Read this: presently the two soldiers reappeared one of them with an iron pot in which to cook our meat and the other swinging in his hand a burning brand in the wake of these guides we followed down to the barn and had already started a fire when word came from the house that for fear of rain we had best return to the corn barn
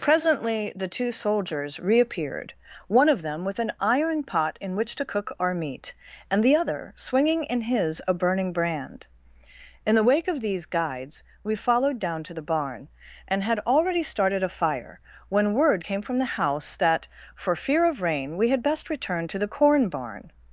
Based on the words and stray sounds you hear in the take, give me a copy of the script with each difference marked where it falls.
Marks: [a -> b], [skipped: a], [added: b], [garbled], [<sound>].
presently the two soldiers reappeared one of them with an iron pot in which to cook our meat and the other swinging in his [skipped: hand] a burning brand in the wake of these guides we followed down to the barn and had already started a fire when word came from the house that for fear of rain we had best return to the corn barn